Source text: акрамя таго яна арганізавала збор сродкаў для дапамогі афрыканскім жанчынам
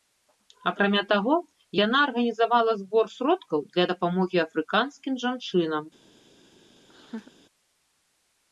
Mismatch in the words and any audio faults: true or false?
true